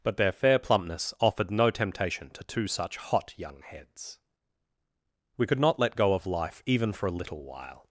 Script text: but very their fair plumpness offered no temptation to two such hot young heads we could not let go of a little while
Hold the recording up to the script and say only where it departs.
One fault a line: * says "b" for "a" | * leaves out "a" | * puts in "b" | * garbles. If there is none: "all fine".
* leaves out "very"
* puts in "life even for"